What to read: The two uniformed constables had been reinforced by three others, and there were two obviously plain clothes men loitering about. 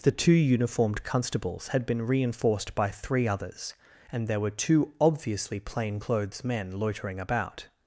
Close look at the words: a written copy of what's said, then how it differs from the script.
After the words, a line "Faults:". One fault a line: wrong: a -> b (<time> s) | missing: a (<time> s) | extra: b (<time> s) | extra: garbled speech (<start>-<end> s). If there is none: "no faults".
The two uniformed constables had been reinforced by three others, and there were two obviously plain clothes men loitering about.
Faults:
no faults